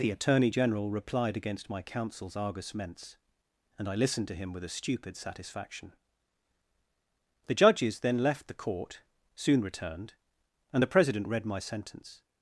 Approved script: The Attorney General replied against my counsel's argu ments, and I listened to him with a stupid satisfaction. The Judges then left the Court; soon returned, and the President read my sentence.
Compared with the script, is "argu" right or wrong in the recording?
wrong